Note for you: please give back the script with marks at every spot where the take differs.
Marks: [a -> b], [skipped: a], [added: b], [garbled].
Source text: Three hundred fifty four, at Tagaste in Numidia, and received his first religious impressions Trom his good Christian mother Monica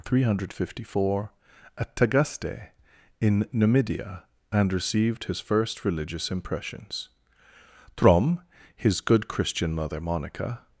Three hundred fifty four, at Tagaste in Numidia, and received his first religious impressions Trom his good Christian mother Monica